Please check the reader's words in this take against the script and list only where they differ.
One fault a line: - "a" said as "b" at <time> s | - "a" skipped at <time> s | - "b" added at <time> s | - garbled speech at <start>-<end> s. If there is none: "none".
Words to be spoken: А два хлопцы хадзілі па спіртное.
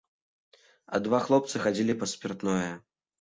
none